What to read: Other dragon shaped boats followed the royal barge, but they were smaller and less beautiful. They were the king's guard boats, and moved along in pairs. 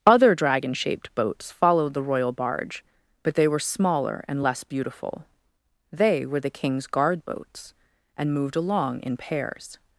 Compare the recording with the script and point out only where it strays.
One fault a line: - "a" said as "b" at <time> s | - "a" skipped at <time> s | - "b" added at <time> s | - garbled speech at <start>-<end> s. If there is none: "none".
none